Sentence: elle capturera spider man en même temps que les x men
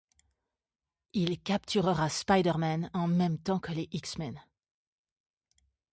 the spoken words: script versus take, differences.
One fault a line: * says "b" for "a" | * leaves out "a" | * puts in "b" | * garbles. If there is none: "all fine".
* says "il" for "elle"